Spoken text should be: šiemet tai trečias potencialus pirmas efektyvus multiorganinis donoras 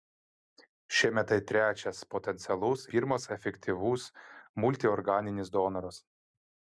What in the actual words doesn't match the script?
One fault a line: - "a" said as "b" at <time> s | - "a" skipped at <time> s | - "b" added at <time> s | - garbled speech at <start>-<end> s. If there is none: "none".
none